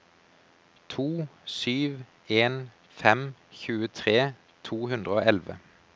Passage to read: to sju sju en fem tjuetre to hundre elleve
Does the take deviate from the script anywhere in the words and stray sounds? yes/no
yes